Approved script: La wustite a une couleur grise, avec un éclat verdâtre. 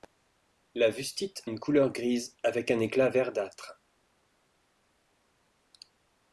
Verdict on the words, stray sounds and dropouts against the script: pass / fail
fail